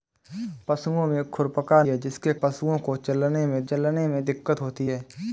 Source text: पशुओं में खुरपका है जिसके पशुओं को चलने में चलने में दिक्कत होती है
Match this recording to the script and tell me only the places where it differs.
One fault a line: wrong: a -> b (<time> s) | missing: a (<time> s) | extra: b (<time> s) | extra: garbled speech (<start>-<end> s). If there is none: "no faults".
no faults